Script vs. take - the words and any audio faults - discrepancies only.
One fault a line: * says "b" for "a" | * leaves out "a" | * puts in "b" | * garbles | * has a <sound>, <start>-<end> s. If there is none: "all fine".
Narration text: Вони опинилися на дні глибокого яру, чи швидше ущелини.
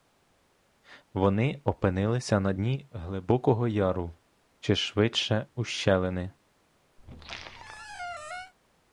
* has a squeak, 7.0-8.5 s